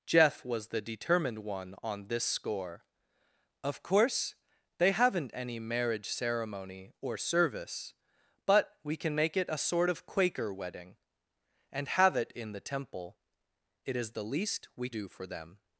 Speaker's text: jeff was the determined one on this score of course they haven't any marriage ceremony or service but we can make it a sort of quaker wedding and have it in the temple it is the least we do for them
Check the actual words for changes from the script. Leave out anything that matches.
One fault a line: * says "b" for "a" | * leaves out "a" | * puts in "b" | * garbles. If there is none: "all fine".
all fine